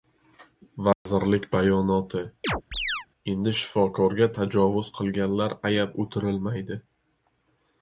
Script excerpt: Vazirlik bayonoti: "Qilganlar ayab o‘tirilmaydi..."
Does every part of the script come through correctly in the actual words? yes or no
no